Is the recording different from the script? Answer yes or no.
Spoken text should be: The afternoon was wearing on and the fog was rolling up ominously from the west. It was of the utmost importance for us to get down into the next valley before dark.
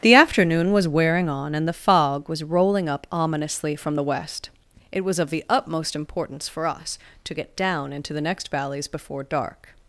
yes